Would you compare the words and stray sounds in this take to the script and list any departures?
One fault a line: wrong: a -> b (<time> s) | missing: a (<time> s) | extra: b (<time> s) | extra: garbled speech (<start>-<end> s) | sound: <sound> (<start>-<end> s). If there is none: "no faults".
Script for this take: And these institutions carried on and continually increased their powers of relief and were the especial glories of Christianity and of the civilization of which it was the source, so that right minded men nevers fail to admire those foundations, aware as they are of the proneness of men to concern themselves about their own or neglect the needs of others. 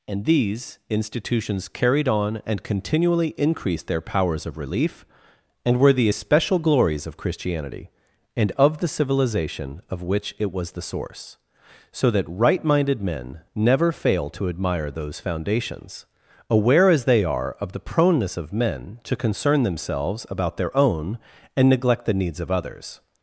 wrong: nevers -> never (13.5 s)
wrong: or -> and (21.6 s)